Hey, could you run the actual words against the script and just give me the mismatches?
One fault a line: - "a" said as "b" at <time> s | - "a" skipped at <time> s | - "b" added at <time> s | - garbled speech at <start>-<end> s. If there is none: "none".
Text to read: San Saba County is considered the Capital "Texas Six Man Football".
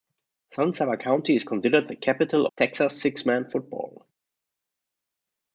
none